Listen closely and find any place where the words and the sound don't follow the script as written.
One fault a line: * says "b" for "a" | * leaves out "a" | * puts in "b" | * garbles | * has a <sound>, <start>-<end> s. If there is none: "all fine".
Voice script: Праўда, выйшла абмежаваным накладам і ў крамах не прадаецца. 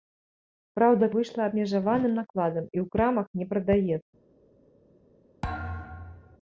* has a thud, 5.4-6.4 s